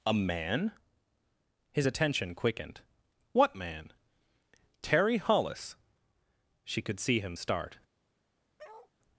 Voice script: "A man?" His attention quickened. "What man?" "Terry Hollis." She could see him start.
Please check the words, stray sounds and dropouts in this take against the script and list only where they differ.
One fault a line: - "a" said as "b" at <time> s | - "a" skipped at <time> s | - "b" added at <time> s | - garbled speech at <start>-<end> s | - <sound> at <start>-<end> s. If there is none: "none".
- bark at 8.6-8.9 s